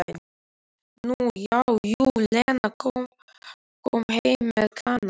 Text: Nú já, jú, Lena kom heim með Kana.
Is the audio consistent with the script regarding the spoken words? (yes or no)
yes